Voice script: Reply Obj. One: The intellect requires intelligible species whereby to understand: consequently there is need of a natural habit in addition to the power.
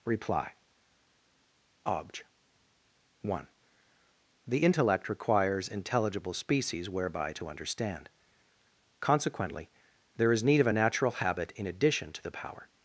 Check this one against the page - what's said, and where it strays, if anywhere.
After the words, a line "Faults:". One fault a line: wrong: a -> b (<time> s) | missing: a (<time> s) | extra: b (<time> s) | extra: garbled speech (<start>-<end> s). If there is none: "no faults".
Reply Obj. One: The intellect requires intelligible species whereby to understand: consequently there is need of a natural habit in addition to the power.
Faults:
no faults